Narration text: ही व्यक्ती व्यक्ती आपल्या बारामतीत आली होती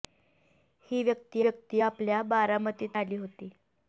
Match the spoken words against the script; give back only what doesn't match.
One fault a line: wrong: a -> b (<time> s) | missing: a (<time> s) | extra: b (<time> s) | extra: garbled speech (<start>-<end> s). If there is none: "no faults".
no faults